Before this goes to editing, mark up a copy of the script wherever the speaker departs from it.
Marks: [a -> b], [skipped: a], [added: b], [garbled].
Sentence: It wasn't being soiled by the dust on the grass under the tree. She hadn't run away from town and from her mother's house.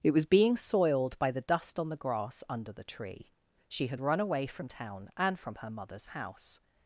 It [wasn't -> was] being soiled by the dust on the grass under the tree. She [hadn't -> had] run away from town and from her mother's house.